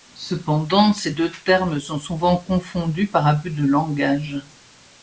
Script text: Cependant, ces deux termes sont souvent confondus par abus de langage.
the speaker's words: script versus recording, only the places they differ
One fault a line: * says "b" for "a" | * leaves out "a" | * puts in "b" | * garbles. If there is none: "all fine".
all fine